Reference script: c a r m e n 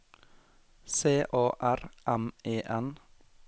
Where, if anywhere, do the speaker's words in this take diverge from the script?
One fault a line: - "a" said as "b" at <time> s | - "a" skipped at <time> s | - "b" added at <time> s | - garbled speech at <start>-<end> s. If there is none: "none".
none